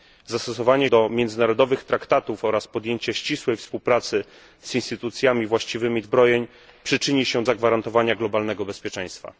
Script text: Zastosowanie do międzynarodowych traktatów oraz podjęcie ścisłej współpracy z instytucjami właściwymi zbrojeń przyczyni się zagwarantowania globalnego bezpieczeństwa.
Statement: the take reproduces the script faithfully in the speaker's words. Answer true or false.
true